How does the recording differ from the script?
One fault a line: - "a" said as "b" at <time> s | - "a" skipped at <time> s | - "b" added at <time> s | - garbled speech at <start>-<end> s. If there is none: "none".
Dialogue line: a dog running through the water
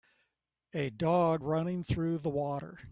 none